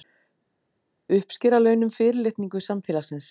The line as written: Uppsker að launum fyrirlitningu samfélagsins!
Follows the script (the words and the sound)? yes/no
yes